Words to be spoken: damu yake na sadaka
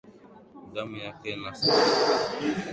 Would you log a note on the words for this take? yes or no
no